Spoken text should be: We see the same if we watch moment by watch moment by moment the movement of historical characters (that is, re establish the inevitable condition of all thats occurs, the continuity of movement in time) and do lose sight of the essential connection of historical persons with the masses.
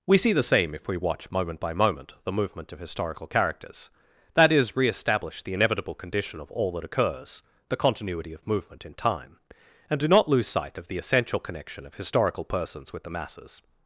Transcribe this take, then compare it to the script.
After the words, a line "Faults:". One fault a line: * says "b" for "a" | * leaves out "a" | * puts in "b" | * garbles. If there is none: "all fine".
We see the same if we watch moment by moment the movement of historical characters (that is, re establish the inevitable condition of all that occurs, the continuity of movement in time) and do not lose sight of the essential connection of historical persons with the masses.
Faults:
* leaves out "watch"
* leaves out "by moment"
* says "that" for "thats"
* puts in "not"